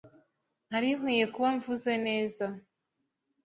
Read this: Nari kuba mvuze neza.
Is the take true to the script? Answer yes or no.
no